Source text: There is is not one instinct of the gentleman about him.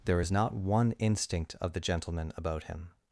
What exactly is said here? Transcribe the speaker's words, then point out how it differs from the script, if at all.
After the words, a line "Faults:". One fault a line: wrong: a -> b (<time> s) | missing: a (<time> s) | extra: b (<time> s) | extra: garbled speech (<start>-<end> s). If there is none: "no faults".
There is not one instinct of the gentleman about him.
Faults:
missing: is (0.3 s)